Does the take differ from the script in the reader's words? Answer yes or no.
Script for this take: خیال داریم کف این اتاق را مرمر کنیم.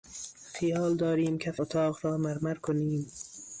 yes